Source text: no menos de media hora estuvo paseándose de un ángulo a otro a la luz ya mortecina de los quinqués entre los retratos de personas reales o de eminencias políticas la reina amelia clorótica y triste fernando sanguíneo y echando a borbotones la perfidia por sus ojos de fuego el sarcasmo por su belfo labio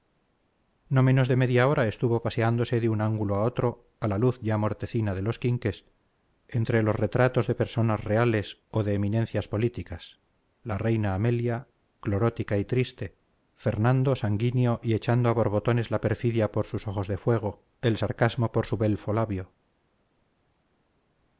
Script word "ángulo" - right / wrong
right